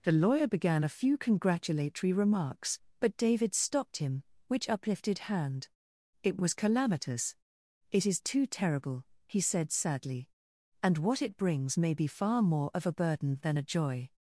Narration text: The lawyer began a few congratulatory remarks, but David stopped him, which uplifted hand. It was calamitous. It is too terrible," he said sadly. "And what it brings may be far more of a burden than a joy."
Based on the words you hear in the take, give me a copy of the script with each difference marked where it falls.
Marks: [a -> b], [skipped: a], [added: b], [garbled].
The lawyer began a few congratulatory remarks, but David stopped him, which uplifted hand. It was calamitous. It is too terrible," he said sadly. "And what it brings may be far more of a burden than a joy."